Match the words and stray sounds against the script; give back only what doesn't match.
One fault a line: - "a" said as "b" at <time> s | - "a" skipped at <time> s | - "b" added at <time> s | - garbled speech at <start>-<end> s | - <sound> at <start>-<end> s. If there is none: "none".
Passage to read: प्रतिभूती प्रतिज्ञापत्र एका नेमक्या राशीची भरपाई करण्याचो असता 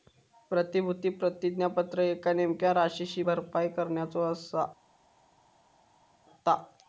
none